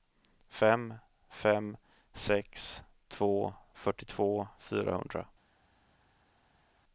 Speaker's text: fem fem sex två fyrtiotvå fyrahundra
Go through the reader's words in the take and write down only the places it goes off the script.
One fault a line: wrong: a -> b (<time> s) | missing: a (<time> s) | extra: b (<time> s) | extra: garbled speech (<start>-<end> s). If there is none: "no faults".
no faults